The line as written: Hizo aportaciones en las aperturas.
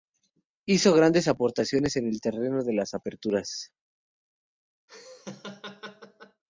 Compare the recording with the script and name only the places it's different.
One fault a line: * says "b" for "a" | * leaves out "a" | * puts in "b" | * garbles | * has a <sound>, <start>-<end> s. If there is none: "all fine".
* puts in "grandes"
* puts in "el terreno de"
* has a laugh, 4.9-6.4 s